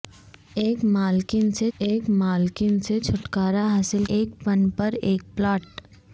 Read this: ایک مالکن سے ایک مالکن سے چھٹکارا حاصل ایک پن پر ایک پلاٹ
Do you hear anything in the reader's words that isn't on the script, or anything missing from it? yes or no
no